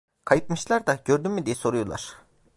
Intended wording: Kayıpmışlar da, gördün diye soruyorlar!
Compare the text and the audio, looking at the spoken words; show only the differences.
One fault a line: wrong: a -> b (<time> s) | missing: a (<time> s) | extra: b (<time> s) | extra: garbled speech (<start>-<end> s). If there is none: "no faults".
extra: mü (1.3 s)